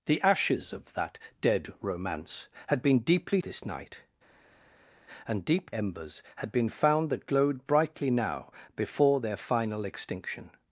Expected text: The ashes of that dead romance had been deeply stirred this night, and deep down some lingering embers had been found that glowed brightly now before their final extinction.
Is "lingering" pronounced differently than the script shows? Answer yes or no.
yes